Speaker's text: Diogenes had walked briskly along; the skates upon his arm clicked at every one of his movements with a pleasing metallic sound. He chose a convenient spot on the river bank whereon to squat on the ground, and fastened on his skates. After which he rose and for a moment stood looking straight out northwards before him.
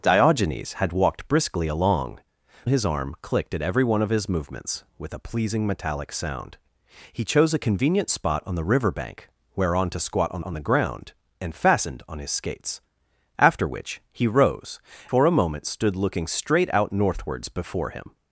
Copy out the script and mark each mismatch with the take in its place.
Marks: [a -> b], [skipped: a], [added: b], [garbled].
Diogenes had walked briskly along; [skipped: the skates upon] his arm clicked at every one of his movements with a pleasing metallic sound. He chose a convenient spot on the river bank whereon to squat on [added: on] the ground, and fastened on his skates. After which he rose [skipped: and] for a moment stood looking straight out northwards before him.